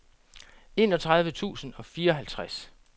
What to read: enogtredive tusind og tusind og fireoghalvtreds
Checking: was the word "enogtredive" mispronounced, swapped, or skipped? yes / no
no